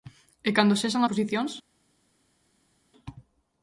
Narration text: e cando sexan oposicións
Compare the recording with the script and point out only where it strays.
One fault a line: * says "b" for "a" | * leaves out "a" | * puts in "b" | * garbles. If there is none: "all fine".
all fine